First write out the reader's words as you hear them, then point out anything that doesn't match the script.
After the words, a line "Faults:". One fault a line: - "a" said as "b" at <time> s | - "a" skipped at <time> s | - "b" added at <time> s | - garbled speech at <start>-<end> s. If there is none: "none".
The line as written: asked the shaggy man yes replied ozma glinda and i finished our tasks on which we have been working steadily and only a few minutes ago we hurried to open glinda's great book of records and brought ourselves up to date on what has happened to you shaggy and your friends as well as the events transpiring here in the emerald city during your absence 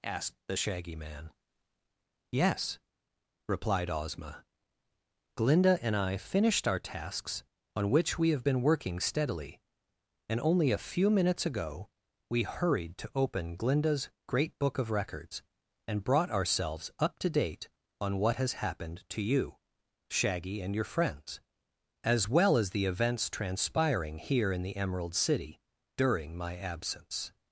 asked the shaggy man yes replied ozma glinda and i finished our tasks on which we have been working steadily and only a few minutes ago we hurried to open glinda's great book of records and brought ourselves up to date on what has happened to you shaggy and your friends as well as the events transpiring here in the emerald city during my absence
Faults:
- "your" said as "my" at 26.4 s